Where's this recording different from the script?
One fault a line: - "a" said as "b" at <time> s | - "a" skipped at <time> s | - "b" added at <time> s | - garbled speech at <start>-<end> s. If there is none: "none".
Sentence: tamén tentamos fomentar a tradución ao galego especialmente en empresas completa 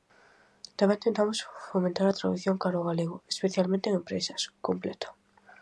- "cara" added at 2.6 s